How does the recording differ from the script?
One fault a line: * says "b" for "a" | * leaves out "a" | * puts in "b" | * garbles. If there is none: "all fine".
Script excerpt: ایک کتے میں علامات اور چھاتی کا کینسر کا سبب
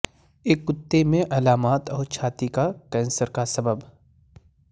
all fine